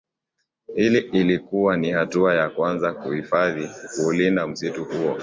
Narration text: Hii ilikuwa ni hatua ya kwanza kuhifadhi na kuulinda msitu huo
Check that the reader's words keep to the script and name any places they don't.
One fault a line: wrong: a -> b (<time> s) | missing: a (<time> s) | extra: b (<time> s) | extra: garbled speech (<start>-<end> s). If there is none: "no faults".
missing: na (3.7 s)